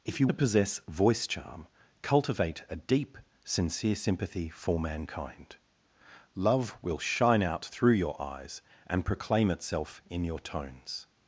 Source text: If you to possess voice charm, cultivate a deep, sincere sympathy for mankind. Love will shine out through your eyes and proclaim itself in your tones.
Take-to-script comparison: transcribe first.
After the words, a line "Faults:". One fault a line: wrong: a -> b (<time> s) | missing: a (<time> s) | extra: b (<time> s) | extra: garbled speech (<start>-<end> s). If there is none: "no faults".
If you to possess voice charm, cultivate a deep, sincere sympathy for mankind. Love will shine out through your eyes and proclaim itself in your tones.
Faults:
no faults